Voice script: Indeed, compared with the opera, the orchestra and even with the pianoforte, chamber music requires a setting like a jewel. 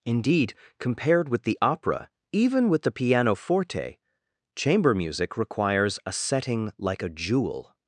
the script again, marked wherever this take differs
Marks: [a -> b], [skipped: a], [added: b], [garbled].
Indeed, compared with the opera, [skipped: the orchestra and] even with the pianoforte, chamber music requires a setting like a jewel.